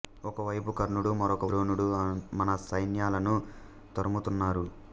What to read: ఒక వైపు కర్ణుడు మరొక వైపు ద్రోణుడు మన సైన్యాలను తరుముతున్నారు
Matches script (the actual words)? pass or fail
fail